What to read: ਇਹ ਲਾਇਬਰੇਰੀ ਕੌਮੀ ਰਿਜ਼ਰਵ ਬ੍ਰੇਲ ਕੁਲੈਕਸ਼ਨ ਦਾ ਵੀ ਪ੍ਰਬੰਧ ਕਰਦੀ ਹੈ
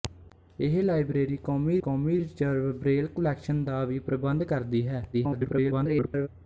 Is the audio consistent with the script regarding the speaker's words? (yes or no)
no